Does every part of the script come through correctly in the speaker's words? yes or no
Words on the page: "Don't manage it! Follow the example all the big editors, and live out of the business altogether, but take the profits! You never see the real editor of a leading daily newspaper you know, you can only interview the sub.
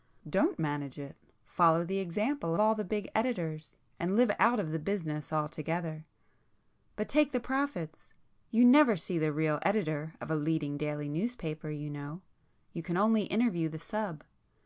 yes